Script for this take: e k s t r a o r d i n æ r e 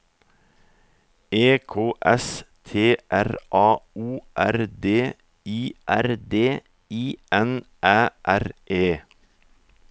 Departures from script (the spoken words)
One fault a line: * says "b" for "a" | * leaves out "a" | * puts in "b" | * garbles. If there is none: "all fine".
* puts in "r d i"